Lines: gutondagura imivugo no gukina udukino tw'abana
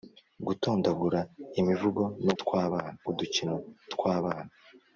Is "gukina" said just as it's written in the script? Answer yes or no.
no